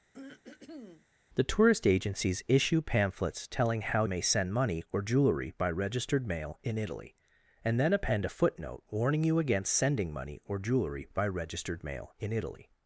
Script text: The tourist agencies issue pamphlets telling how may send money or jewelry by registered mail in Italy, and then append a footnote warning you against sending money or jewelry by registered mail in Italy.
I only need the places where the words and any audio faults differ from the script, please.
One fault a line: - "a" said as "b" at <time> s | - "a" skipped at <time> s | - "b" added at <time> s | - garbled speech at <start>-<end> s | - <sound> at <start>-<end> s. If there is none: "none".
- throat clearing at 0.1-1.1 s